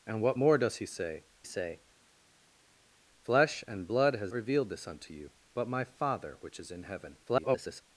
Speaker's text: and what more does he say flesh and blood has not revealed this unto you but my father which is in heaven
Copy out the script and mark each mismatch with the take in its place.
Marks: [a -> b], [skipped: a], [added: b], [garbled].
and what more does he say [added: say] flesh and blood has [skipped: not] revealed this unto you but my father which is in heaven [garbled]